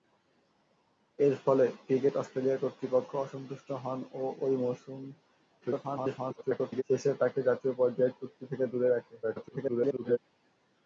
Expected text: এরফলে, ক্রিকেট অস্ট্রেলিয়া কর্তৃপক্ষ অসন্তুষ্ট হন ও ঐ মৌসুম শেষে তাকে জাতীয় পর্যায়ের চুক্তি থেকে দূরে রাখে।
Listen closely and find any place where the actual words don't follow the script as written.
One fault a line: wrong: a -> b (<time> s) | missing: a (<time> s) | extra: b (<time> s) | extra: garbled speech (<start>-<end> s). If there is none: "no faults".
extra: garbled speech (5.6-6.8 s)
extra: garbled speech (9.2-10.2 s)